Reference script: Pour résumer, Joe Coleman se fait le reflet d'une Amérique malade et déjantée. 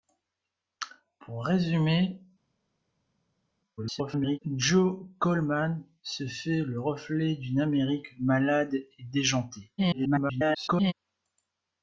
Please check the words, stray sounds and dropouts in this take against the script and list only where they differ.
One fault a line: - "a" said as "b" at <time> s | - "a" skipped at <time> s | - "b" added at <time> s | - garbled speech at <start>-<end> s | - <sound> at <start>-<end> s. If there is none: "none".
- garbled speech at 3.8-4.4 s
- garbled speech at 9.8-10.9 s